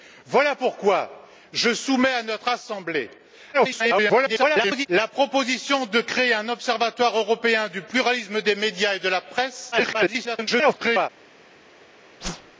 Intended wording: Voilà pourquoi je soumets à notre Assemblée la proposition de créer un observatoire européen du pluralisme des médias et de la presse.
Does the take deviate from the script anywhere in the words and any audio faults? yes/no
yes